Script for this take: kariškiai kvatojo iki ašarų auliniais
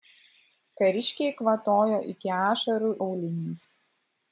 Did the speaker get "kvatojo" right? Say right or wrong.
right